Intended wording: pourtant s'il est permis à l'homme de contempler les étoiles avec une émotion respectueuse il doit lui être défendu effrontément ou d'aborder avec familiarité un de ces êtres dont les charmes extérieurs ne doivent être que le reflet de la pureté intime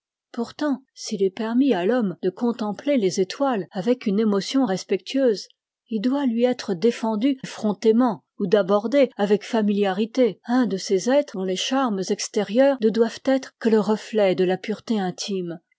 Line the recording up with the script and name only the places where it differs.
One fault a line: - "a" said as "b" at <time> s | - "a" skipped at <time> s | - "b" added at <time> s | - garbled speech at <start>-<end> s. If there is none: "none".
none